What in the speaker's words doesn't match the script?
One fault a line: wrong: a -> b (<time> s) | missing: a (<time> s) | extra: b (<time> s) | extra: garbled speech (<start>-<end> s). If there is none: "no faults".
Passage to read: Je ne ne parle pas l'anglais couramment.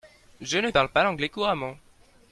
missing: ne (0.7 s)